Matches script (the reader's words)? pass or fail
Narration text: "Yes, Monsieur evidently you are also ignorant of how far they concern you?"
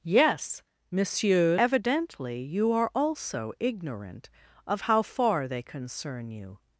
pass